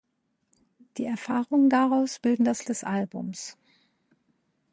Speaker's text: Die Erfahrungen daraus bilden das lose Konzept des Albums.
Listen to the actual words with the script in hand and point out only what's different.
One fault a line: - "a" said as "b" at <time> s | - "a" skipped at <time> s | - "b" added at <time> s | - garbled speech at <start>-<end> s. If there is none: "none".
- "lose Konzept" skipped at 2.6 s